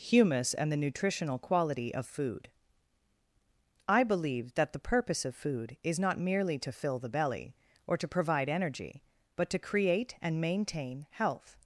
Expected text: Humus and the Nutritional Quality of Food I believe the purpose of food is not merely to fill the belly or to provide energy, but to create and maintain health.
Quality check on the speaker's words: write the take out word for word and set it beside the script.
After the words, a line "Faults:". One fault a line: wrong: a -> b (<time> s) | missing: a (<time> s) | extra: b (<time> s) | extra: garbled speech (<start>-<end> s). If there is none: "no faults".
Humus and the Nutritional Quality of Food I believe that the purpose of food is not merely to fill the belly or to provide energy, but to create and maintain health.
Faults:
extra: that (4.5 s)